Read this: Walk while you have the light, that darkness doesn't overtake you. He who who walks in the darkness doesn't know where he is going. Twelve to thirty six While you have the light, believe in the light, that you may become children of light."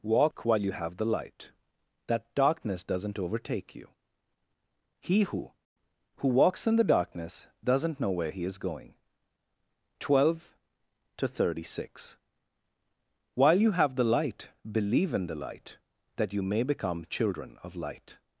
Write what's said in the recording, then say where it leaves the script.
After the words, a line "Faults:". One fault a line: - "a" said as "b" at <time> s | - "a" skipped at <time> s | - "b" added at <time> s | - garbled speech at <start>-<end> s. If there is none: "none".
Walk while you have the light, that darkness doesn't overtake you. He who who walks in the darkness doesn't know where he is going. Twelve to thirty six While you have the light, believe in the light, that you may become children of light."
Faults:
none